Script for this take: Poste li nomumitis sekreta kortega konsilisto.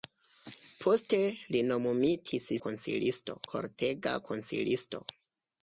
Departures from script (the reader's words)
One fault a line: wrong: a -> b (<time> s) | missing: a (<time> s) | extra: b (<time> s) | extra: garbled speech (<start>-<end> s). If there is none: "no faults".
wrong: sekreta -> konsilisto (2.7 s)